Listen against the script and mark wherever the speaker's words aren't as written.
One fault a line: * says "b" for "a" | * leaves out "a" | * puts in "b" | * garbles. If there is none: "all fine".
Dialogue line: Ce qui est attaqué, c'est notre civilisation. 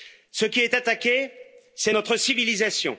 all fine